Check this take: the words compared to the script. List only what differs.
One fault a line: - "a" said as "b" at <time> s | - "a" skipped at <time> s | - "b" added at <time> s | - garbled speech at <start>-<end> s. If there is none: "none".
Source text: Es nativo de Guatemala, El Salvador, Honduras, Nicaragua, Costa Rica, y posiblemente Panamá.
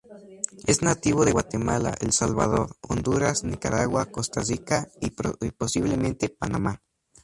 none